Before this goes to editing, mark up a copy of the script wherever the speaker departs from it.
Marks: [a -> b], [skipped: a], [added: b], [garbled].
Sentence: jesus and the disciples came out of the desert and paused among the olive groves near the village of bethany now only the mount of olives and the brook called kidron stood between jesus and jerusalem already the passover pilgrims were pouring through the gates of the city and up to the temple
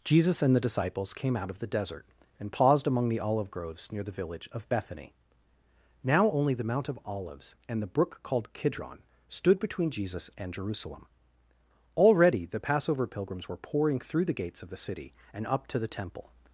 jesus and the disciples came out of the desert and paused among the olive groves near the village of bethany now only the mount of olives and the brook called kidron stood between jesus and jerusalem already the passover pilgrims were pouring through the gates of the city and up to the temple